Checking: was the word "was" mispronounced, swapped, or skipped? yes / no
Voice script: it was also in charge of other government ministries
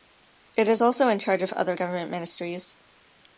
yes